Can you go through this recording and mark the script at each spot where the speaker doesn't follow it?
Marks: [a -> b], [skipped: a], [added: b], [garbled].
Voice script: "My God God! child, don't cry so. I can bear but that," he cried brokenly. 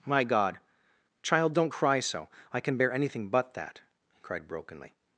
"My God [skipped: God!] child, don't cry so. I can bear [added: anything] but that," he cried brokenly.